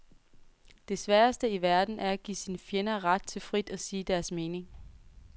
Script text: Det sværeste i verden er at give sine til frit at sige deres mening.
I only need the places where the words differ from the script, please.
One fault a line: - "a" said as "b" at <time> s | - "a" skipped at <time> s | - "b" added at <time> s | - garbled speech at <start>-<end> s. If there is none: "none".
- "fjender ret" added at 2.6 s